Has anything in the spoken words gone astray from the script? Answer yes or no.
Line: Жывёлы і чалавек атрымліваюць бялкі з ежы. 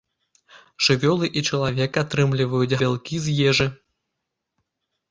no